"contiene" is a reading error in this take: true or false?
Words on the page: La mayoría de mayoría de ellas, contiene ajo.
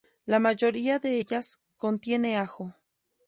false